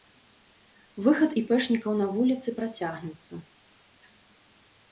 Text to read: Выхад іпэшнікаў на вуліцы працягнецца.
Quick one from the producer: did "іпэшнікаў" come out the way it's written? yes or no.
yes